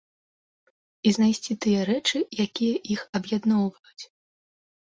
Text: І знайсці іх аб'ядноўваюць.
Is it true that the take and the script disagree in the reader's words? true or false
true